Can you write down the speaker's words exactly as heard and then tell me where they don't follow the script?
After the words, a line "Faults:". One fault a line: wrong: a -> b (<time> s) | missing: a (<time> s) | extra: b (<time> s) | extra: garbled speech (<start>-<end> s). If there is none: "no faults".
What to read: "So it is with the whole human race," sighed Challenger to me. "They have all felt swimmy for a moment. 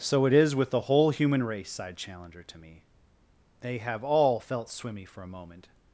"So it is with the whole human race," sighed Challenger to me. "They have all felt swimmy for a moment.
Faults:
no faults